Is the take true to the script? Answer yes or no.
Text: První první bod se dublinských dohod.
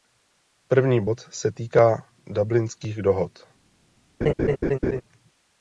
no